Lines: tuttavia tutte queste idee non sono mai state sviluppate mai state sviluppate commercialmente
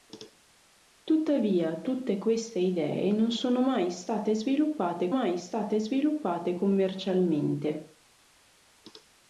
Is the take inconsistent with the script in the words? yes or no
no